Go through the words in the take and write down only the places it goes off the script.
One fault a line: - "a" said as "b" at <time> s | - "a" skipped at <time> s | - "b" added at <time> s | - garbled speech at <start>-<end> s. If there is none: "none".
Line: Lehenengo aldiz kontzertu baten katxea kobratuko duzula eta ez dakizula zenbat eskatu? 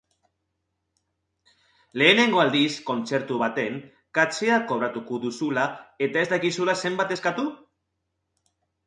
none